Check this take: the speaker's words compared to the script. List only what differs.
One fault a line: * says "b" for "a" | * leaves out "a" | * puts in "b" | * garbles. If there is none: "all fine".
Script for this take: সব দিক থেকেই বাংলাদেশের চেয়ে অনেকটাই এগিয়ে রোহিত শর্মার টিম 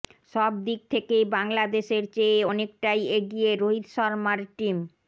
all fine